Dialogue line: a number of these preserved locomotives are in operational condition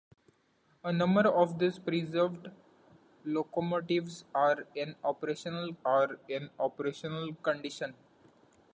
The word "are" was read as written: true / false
true